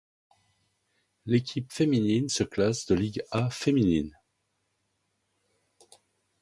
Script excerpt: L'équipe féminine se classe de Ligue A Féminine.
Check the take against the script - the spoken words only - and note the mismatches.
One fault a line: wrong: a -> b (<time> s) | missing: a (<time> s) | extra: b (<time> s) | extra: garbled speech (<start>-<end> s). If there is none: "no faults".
no faults